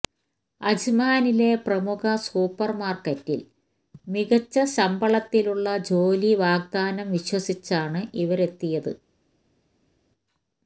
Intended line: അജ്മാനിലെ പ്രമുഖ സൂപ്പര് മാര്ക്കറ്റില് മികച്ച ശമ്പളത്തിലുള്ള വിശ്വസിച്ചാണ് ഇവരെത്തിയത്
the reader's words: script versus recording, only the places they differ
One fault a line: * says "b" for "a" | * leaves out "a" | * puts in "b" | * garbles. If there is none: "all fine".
* puts in "ജോലി വാഗ്ദാനം"